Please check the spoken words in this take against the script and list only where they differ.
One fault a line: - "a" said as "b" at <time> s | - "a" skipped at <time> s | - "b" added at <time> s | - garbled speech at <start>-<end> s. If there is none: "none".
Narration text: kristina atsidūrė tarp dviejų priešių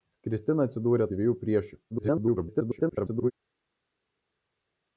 - "tarp" skipped at 1.1 s
- garbled speech at 1.9-3.3 s